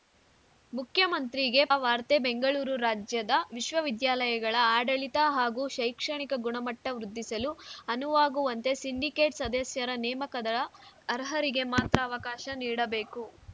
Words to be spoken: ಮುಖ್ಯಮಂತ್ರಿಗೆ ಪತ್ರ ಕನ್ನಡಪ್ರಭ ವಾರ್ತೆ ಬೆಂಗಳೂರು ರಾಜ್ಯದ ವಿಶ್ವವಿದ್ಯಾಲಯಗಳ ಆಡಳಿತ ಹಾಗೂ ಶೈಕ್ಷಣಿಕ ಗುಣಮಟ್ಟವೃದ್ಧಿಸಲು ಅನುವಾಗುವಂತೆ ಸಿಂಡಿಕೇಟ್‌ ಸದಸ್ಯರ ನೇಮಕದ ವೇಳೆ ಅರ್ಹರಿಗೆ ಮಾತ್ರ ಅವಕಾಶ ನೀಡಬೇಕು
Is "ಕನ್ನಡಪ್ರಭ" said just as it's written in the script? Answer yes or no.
no